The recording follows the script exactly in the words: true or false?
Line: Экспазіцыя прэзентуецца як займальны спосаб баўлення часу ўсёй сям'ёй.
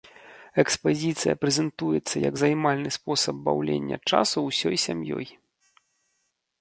true